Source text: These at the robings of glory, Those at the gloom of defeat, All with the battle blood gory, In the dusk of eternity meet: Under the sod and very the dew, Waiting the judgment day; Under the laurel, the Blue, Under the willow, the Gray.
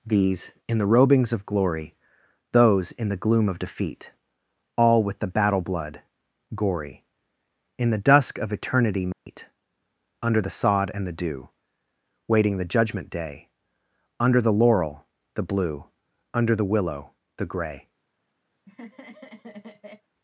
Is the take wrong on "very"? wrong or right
wrong